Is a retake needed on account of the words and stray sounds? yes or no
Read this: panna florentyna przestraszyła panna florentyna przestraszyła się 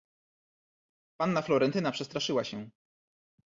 yes